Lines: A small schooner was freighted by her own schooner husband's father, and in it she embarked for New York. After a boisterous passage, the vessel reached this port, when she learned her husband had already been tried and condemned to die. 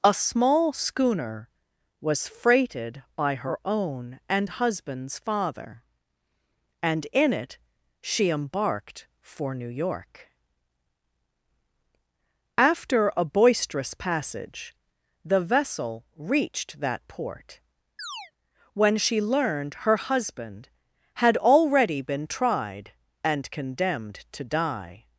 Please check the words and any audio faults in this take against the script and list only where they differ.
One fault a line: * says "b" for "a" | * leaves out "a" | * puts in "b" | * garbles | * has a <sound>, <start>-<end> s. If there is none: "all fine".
* says "and" for "schooner"
* says "that" for "this"
* has a chirp, 18.0-18.3 s